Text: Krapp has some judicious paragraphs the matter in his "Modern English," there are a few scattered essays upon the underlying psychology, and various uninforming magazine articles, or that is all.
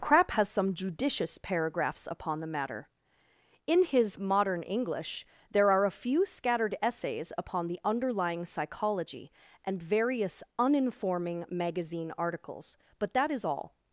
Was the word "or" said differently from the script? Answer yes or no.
yes